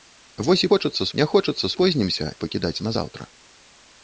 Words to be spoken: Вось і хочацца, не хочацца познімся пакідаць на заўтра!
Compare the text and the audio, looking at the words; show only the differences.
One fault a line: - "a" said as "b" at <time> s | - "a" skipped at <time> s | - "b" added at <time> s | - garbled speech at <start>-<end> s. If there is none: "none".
none